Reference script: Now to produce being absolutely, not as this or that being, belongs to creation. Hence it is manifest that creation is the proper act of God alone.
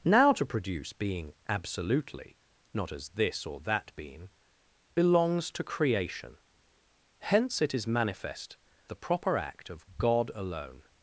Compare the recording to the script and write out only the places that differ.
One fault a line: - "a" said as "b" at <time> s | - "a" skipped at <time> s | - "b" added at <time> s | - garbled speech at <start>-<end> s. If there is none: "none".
- "that creation is" skipped at 8.6 s